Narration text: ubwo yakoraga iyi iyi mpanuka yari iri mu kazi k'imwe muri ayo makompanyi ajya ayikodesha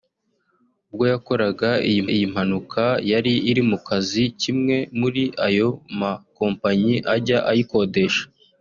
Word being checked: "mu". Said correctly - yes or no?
yes